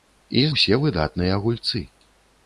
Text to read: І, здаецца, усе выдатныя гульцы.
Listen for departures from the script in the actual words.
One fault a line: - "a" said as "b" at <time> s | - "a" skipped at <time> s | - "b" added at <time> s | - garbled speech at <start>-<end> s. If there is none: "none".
- "здаецца" skipped at 0.5 s